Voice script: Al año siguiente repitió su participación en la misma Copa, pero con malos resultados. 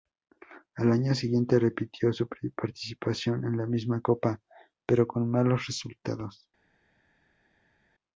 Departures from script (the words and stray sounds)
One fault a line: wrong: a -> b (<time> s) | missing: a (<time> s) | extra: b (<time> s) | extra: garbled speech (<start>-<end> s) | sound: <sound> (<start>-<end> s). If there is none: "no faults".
no faults